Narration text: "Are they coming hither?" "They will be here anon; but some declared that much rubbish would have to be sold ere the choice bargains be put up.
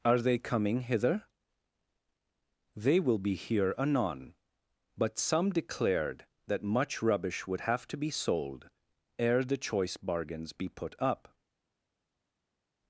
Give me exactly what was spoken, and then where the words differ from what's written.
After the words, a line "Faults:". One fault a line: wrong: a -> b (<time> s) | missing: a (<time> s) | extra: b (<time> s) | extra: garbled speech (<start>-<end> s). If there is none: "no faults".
"Are they coming hither?" "They will be here anon; but some declared that much rubbish would have to be sold ere the choice bargains be put up.
Faults:
no faults